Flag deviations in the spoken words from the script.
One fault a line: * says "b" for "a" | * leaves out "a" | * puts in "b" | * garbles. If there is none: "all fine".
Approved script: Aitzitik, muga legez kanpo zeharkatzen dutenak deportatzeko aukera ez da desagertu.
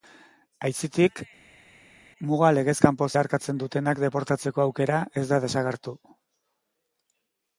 all fine